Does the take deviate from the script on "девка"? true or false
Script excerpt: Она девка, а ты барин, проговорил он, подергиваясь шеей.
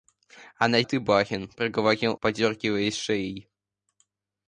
true